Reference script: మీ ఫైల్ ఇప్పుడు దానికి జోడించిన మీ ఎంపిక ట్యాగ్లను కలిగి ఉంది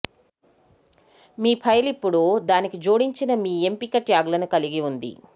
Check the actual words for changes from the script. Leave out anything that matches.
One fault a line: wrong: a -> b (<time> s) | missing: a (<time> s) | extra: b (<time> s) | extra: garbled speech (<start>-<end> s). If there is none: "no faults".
no faults